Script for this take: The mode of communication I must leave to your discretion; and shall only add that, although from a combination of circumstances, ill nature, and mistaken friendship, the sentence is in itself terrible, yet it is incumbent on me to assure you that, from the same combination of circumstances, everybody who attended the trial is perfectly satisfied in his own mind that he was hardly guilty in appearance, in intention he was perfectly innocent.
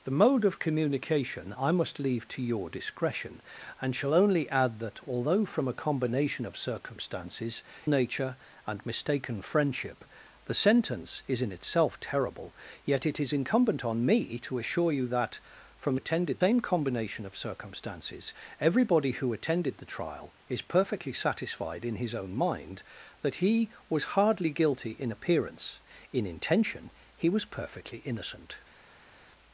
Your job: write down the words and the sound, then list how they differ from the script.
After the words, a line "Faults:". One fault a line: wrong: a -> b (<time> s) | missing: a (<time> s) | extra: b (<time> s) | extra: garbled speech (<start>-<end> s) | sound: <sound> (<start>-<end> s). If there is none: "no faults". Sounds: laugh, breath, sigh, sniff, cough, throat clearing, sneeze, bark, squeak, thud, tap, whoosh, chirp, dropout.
The mode of communication I must leave to your discretion; and shall only add that, although from a combination of circumstances, nature, and mistaken friendship, the sentence is in itself terrible, yet it is incumbent on me to assure you that, from attended same combination of circumstances, everybody who attended the trial is perfectly satisfied in his own mind that he was hardly guilty in appearance, in intention he was perfectly innocent.
Faults:
missing: ill (7.6 s)
wrong: the -> attended (15.9 s)